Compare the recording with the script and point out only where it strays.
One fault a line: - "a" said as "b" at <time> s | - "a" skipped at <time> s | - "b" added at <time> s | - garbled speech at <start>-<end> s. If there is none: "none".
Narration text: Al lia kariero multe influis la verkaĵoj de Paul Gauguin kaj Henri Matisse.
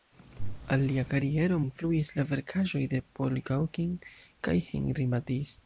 - "multe" skipped at 1.6 s